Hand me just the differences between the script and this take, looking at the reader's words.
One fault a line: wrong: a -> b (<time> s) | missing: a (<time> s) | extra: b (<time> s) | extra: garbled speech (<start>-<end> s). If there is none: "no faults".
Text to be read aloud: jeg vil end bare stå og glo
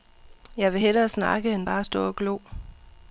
extra: hellere snakke (0.8 s)